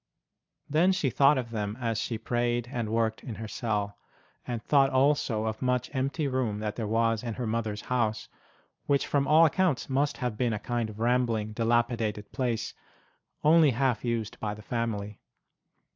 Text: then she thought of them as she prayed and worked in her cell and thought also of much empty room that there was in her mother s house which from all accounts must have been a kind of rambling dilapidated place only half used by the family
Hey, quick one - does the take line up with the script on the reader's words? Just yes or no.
yes